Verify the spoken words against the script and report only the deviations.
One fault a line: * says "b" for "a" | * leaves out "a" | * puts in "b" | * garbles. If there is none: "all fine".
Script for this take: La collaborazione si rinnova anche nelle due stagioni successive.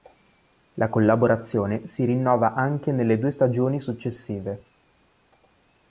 all fine